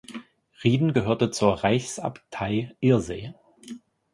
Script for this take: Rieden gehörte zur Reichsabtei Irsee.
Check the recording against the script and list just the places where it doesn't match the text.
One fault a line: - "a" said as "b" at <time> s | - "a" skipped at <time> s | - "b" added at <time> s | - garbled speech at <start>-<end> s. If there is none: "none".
none